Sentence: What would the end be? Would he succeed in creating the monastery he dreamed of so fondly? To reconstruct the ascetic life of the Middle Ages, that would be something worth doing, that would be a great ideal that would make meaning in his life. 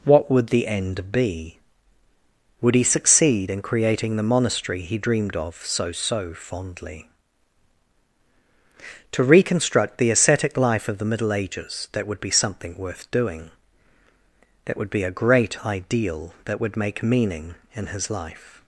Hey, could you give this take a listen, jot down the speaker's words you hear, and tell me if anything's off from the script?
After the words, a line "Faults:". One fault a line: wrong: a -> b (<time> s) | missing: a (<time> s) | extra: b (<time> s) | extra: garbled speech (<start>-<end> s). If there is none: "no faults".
What would the end be? Would he succeed in creating the monastery he dreamed of so so fondly? To reconstruct the ascetic life of the Middle Ages, that would be something worth doing, that would be a great ideal that would make meaning in his life.
Faults:
extra: so (5.9 s)